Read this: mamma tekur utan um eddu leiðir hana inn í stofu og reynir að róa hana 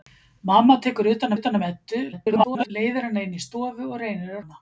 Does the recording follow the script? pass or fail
fail